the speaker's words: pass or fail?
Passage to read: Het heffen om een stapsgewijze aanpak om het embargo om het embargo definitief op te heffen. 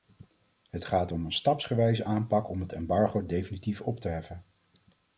fail